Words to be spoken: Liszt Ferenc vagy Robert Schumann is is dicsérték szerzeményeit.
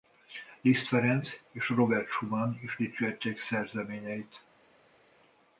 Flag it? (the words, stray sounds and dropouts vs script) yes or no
yes